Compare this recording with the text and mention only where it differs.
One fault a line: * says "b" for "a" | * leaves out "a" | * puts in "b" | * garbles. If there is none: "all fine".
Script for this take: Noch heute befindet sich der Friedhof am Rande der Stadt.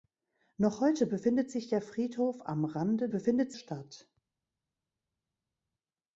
* says "befindet" for "der"